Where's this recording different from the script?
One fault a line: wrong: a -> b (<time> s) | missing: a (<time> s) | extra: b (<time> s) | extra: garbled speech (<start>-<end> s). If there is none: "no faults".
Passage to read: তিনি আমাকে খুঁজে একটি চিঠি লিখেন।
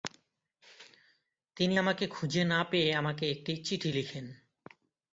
extra: না পেয়ে আমাকে (2.5 s)